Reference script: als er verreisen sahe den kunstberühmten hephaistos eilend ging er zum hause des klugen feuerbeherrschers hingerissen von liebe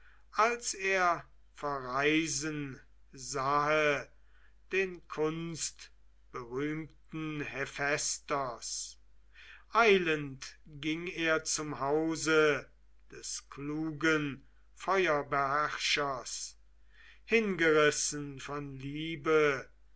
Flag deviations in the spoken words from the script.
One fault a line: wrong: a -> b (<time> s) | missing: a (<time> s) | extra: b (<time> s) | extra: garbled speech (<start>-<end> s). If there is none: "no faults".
no faults